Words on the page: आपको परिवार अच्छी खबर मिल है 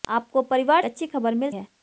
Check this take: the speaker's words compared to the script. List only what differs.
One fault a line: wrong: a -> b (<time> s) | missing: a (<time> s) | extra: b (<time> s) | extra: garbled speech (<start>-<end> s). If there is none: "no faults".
no faults